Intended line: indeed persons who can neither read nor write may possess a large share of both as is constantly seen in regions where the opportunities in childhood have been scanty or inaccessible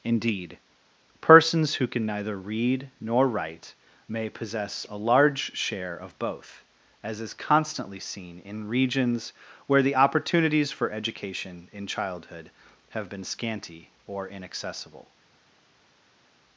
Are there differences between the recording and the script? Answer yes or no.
yes